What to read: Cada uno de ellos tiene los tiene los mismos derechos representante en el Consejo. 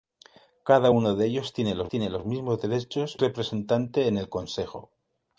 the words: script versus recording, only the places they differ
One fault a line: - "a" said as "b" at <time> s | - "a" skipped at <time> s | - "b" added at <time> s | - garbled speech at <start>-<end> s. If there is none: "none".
none